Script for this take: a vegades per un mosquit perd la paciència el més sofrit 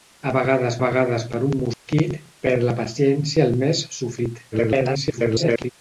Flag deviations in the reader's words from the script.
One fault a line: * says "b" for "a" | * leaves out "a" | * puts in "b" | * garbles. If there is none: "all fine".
* puts in "vegades"
* garbles